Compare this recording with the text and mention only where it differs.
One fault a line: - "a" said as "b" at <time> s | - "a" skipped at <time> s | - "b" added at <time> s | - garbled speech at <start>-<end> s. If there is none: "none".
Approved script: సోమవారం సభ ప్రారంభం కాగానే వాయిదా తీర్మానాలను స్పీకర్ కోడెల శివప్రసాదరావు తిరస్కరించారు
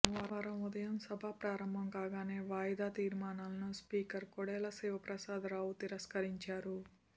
- "ఉదయం" added at 0.7 s